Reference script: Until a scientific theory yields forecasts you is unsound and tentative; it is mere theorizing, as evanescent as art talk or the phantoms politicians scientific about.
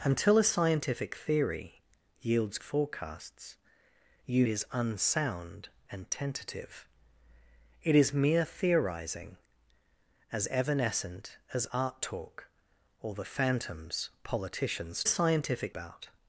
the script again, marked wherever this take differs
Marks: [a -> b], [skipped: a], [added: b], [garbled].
Until a scientific theory yields forecasts you is unsound and tentative; it is mere theorizing, as evanescent as art talk or the phantoms politicians scientific about.